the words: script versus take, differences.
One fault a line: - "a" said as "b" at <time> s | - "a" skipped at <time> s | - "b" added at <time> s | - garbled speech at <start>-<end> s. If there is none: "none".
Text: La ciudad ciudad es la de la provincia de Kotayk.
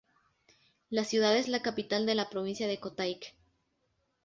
- "ciudad" skipped at 1.4 s
- "capital" added at 1.6 s